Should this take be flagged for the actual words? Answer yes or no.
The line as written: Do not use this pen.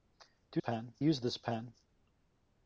yes